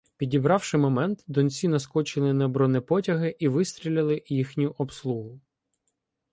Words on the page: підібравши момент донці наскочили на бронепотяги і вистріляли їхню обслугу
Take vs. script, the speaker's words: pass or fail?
pass